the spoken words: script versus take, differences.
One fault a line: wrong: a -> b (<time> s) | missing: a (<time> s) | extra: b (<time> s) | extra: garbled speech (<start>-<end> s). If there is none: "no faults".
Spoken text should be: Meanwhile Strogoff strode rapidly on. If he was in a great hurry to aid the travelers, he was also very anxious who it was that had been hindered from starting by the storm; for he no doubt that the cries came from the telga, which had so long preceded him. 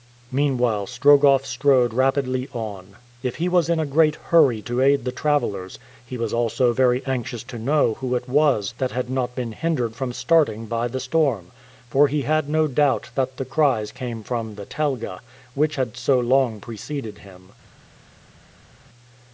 extra: to know (7.4 s)
extra: not (9.1 s)
extra: had (12.2 s)